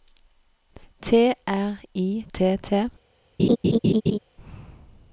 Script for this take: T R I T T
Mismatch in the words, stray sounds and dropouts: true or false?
true